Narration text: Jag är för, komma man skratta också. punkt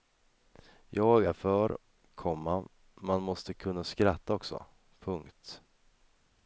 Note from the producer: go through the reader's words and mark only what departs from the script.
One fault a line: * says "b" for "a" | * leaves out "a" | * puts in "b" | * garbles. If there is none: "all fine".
* puts in "måste kunna"